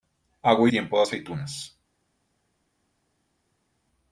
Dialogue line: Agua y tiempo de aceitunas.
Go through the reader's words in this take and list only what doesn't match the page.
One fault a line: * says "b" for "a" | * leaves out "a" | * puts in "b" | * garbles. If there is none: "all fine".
all fine